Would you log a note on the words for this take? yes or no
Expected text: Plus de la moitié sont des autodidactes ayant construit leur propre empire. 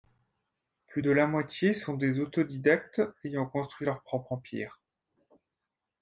no